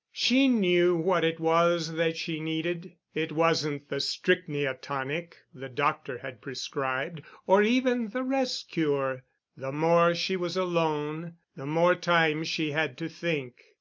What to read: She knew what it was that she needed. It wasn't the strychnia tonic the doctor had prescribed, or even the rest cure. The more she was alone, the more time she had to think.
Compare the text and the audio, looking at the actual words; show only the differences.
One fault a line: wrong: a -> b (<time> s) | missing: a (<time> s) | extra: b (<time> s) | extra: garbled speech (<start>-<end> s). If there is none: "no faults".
no faults